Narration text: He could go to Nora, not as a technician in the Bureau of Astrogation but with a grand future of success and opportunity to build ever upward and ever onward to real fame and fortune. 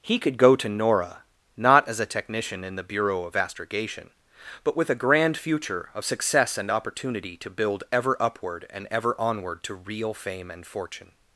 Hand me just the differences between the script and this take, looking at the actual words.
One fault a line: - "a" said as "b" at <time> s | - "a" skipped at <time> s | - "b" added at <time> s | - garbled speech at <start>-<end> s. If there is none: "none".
none